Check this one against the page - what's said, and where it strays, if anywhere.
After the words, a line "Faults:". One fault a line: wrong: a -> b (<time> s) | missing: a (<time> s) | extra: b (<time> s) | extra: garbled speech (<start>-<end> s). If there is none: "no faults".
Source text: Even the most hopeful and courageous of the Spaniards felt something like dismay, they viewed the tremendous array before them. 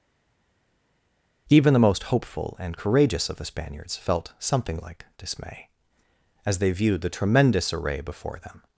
Even the most hopeful and courageous of the Spaniards felt something like dismay, as they viewed the tremendous array before them.
Faults:
extra: as (6.5 s)